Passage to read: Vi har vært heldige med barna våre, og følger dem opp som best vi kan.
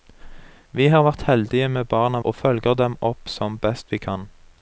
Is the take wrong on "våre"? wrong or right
wrong